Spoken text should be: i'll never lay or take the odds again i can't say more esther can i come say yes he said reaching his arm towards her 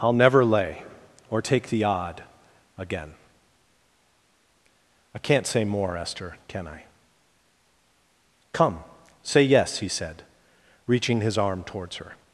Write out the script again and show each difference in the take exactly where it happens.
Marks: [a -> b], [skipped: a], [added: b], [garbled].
i'll never lay or take the [odds -> odd] again i can't say more esther can i come say yes he said reaching his arm towards her